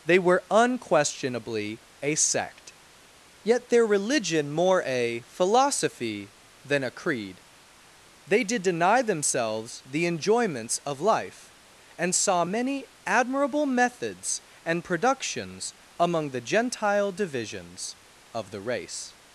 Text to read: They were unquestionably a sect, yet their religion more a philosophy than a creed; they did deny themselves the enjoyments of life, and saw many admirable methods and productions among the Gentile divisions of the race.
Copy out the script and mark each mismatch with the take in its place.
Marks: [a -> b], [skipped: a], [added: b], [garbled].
They were unquestionably a sect, yet their religion more a philosophy than a creed; they did deny themselves the enjoyments of life, and saw many admirable methods and productions among the Gentile divisions of the race.